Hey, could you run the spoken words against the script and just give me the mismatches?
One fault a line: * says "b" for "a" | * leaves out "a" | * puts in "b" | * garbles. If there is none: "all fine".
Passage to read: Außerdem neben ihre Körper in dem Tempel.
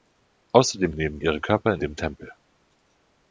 all fine